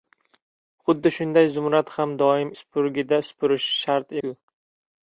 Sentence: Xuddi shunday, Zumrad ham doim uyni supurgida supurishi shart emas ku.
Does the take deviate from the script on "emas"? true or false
true